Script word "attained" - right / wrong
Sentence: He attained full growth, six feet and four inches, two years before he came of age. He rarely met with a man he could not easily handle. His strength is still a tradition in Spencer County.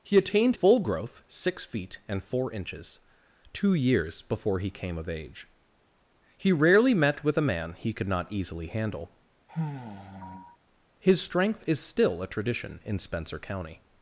right